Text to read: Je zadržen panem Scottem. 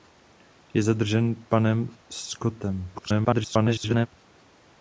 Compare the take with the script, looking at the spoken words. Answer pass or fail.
fail